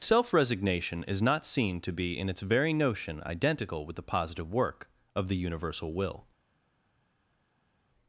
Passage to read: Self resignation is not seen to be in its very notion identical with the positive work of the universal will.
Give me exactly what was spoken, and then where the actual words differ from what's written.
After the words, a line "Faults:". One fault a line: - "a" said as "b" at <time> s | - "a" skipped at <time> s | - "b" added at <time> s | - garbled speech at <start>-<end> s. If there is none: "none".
Self resignation is not seen to be in its very notion identical with the positive work of the universal will.
Faults:
none